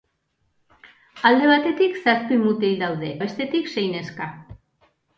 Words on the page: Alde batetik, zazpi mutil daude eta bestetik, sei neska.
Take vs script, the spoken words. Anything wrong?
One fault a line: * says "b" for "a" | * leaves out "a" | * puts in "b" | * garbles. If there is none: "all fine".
* leaves out "eta"